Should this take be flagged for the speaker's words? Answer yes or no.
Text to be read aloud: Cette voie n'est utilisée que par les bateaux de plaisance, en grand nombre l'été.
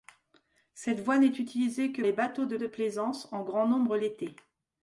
yes